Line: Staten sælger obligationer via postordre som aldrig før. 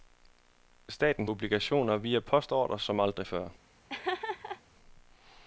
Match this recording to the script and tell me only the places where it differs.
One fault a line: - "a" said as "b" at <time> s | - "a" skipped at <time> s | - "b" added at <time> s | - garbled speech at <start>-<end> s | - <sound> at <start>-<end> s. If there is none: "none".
- "sælger" skipped at 1.3 s
- laugh at 3.9-4.6 s